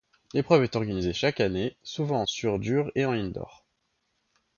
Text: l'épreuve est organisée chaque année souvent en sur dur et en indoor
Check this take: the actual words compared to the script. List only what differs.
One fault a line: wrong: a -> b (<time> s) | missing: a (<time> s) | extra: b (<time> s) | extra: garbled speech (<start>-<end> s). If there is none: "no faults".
no faults